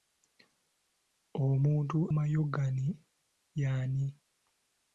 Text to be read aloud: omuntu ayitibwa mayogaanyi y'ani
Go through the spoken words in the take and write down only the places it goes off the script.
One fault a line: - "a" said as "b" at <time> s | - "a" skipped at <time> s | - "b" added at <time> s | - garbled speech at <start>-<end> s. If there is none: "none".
- "ayitibwa" skipped at 2.0 s